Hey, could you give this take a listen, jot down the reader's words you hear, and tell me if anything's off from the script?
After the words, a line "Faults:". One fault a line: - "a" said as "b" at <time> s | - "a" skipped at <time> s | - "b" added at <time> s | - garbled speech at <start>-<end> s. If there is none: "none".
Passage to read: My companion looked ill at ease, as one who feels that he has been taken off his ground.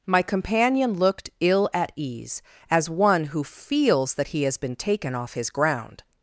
My companion looked ill at ease, as one who feels that he has been taken off his ground.
Faults:
none